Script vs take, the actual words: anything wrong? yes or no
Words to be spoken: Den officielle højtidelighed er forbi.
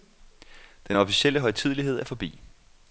no